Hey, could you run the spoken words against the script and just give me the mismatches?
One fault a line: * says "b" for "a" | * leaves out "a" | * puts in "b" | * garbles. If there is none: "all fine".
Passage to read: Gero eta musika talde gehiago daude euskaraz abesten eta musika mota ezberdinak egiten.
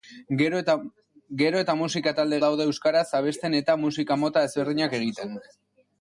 * leaves out "gehiago"